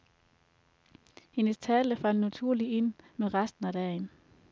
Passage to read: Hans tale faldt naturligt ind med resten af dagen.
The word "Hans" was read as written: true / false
false